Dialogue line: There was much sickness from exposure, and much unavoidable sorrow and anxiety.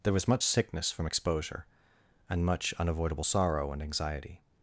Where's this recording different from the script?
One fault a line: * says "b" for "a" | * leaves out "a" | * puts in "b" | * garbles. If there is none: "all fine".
all fine